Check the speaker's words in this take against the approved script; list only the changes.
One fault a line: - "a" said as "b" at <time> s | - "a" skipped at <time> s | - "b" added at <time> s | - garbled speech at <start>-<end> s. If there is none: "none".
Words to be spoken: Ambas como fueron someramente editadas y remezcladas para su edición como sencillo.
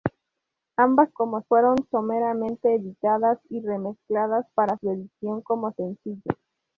none